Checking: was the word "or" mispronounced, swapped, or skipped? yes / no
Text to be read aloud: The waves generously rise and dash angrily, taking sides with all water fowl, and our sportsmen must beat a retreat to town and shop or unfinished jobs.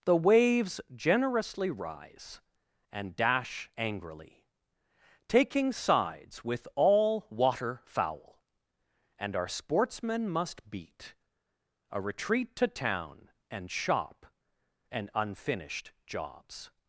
yes